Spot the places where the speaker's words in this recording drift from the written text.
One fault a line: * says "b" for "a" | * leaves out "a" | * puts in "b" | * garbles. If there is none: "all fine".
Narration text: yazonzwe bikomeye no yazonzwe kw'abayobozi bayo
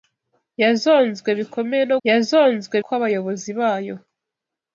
all fine